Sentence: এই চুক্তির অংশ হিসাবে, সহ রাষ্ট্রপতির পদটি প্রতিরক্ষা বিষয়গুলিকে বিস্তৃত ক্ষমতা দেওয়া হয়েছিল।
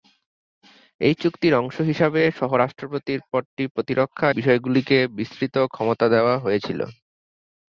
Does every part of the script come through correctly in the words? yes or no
yes